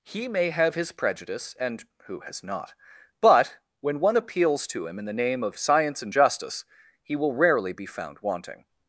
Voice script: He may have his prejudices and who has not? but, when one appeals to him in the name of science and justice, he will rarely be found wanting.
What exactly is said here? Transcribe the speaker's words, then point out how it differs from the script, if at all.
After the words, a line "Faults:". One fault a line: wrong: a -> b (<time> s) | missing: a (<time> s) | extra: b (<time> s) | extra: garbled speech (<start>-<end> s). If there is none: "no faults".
He may have his prejudice and who has not? but, when one appeals to him in the name of science and justice, he will rarely be found wanting.
Faults:
wrong: prejudices -> prejudice (0.9 s)